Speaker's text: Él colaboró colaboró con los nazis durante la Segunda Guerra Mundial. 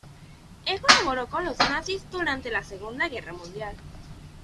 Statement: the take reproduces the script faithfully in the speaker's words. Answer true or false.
false